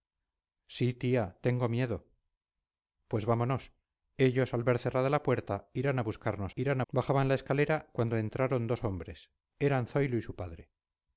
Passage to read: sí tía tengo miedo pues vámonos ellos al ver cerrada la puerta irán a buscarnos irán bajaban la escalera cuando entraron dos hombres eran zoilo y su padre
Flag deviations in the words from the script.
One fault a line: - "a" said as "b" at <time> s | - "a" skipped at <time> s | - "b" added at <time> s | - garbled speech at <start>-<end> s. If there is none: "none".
none